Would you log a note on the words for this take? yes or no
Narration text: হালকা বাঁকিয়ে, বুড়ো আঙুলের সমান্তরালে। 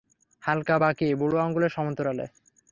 no